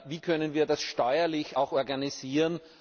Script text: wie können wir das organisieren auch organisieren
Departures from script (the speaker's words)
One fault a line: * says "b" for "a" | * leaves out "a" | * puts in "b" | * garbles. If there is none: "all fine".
* says "steuerlich" for "organisieren"